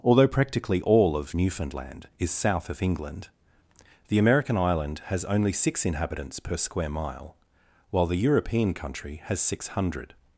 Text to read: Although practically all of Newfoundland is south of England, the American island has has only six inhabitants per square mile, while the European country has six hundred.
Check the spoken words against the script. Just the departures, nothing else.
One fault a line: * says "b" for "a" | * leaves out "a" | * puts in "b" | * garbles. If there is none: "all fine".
* leaves out "has"